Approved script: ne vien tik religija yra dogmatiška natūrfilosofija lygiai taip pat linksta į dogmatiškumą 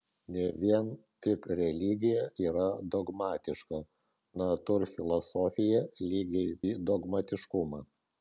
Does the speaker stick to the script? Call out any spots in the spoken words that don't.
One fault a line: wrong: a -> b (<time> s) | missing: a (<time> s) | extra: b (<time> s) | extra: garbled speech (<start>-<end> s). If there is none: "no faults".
missing: taip pat linksta (6.6 s)